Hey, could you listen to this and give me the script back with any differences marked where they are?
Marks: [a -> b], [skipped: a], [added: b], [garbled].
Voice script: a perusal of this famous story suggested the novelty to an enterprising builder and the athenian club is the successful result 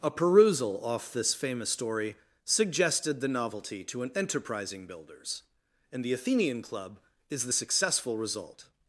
a perusal [of -> off] this famous story suggested the novelty to an enterprising [builder -> builders] and the athenian club is the successful result